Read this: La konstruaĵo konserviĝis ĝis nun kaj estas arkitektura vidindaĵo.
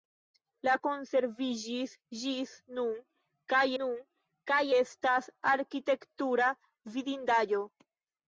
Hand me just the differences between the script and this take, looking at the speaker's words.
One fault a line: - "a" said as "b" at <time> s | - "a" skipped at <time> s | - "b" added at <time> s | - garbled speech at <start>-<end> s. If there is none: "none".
- "konstruaĵo" skipped at 0.7 s
- "nun kaj" added at 3.8 s